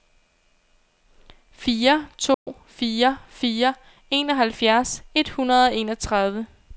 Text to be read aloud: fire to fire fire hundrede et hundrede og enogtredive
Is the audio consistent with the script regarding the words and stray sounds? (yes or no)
no